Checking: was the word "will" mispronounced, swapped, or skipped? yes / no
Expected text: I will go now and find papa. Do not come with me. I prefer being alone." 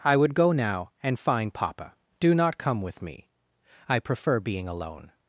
yes